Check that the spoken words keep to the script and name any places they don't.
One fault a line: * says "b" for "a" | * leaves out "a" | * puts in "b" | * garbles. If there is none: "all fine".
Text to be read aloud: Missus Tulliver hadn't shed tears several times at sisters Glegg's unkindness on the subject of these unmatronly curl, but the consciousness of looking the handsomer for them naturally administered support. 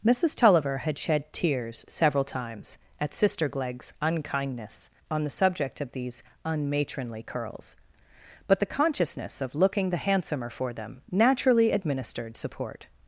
* says "had" for "hadn't"
* says "sister" for "sisters"
* says "curls" for "curl"